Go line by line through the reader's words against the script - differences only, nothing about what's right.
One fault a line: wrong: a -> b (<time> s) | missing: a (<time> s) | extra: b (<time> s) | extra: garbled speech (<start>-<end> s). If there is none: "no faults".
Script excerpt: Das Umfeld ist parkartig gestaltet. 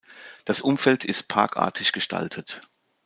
no faults